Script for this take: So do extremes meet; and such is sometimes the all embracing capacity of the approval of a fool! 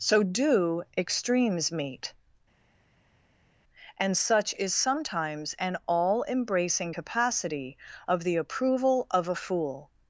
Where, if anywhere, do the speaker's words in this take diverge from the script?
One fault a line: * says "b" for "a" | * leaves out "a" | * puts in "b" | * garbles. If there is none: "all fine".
* says "an" for "the"